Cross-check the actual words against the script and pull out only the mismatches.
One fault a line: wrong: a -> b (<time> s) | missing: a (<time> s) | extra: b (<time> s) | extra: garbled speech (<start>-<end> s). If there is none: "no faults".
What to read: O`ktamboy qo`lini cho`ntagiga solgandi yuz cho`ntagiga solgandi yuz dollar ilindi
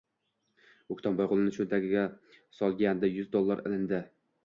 missing: cho`ntagiga solgandi yuz (3.4 s)